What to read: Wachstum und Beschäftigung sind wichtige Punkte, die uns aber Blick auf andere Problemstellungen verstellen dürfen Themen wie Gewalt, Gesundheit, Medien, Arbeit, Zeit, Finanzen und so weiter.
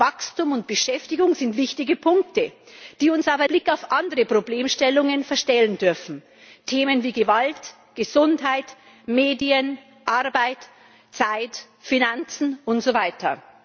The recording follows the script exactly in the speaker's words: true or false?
true